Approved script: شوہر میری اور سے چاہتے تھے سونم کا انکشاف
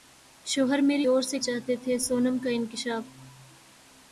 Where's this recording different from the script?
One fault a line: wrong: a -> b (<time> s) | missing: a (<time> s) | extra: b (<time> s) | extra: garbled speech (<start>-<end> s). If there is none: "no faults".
no faults